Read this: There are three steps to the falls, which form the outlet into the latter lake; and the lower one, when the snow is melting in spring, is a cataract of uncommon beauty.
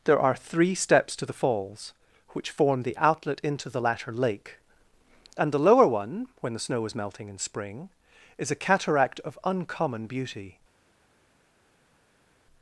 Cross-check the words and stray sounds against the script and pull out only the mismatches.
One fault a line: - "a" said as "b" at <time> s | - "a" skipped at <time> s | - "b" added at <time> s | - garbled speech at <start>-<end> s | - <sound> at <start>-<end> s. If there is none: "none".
none